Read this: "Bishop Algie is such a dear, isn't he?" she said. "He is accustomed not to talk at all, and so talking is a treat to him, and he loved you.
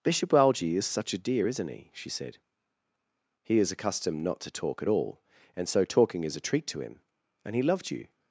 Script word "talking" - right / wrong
right